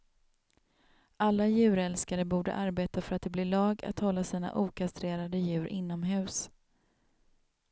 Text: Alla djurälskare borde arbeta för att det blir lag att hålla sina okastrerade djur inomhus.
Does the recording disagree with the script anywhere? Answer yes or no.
no